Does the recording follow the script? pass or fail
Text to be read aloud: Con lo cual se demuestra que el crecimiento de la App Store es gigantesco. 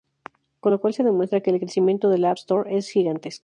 pass